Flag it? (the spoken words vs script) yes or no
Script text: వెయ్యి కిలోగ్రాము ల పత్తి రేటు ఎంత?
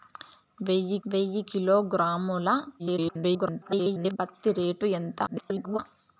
yes